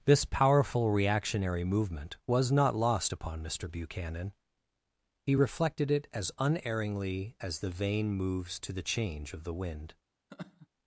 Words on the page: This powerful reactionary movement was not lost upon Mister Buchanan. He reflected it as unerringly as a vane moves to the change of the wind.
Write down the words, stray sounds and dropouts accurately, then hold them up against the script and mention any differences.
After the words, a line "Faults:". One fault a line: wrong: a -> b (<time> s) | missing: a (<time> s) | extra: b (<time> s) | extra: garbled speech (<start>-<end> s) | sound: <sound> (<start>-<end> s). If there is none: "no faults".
This powerful reactionary movement was not lost upon Mister Buchanan. He reflected it as unerringly as the vane moves to the change of the wind.
Faults:
wrong: a -> the (7.6 s)
sound: laugh (10.3-10.7 s)